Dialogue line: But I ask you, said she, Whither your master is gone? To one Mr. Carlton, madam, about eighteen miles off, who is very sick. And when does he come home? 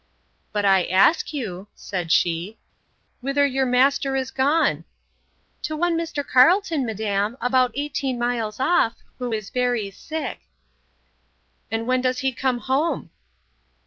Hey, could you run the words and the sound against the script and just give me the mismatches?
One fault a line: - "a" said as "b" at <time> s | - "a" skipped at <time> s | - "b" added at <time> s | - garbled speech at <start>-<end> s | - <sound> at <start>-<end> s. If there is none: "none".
none